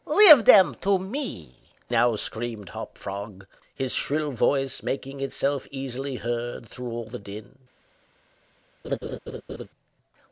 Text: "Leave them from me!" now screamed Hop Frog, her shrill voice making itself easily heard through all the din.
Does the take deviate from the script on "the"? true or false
false